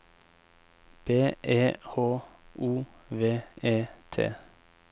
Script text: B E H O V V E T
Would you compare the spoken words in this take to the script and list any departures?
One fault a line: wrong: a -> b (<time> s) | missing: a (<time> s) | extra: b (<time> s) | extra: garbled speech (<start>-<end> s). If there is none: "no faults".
missing: V (3.4 s)